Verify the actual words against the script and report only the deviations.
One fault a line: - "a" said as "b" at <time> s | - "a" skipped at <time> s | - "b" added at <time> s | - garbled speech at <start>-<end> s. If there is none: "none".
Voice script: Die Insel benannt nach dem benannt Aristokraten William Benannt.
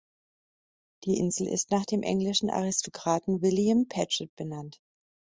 - "benannt" said as "ist" at 1.5 s
- "benannt" said as "englischen" at 2.0 s
- "Paget" added at 3.9 s